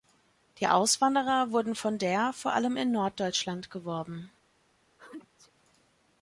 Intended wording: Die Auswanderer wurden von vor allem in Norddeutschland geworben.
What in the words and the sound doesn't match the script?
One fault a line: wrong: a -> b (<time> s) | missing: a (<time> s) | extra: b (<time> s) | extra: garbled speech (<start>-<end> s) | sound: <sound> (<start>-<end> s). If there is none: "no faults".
extra: der (2.0 s)
sound: sneeze (5.0-5.5 s)